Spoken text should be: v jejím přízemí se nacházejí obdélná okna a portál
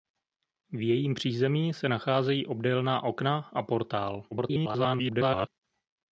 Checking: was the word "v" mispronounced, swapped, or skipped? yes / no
no